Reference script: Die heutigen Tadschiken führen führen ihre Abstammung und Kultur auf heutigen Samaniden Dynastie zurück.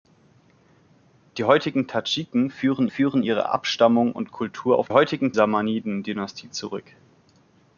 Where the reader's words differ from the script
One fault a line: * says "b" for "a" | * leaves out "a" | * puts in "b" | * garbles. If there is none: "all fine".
all fine